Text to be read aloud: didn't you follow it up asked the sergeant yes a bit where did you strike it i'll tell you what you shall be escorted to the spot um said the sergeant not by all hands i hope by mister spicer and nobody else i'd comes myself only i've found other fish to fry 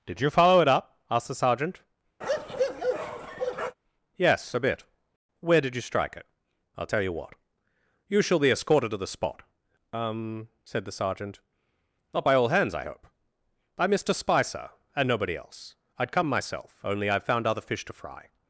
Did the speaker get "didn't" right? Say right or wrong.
wrong